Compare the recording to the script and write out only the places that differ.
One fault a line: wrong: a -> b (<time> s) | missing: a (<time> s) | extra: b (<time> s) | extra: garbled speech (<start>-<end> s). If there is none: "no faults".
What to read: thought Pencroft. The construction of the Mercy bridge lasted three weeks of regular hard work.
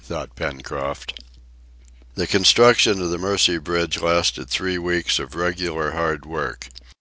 no faults